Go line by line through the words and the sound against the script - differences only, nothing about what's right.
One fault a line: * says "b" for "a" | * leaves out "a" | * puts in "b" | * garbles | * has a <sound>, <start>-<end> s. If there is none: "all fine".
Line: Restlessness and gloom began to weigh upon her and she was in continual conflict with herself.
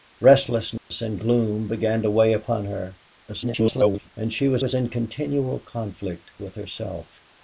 * has a dropout, 0.8-0.9 s
* garbles
* puts in "was"